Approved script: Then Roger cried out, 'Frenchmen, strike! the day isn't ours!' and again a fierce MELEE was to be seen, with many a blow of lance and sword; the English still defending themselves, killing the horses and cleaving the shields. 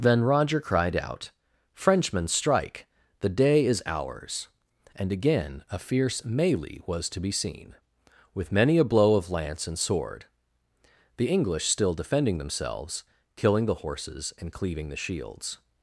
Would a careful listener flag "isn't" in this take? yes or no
yes